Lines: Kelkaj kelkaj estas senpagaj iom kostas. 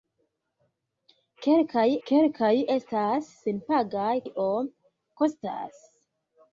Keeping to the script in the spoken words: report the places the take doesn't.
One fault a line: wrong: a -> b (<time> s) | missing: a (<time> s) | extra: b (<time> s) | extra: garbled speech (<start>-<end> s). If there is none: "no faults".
no faults